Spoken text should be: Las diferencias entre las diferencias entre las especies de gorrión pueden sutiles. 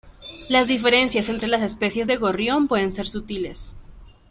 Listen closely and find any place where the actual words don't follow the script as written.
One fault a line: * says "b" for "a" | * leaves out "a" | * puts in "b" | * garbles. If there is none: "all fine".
* leaves out "diferencias entre las"
* puts in "ser"